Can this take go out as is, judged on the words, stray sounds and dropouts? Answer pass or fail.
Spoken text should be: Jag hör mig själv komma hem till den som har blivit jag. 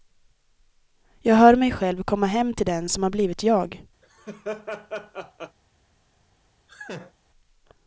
fail